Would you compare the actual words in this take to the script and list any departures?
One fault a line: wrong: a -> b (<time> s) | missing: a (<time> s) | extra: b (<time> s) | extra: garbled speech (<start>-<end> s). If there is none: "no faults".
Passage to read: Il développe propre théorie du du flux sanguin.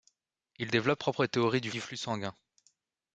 no faults